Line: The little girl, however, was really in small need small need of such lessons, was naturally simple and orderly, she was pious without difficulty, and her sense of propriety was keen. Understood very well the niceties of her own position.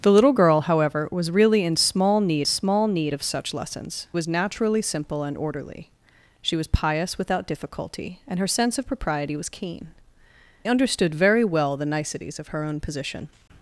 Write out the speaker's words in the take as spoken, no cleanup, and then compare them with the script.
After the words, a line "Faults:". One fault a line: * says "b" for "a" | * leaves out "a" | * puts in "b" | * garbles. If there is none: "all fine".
The little girl, however, was really in small need small need of such lessons, was naturally simple and orderly, she was pious without difficulty, and her sense of propriety was keen. Understood very well the niceties of her own position.
Faults:
all fine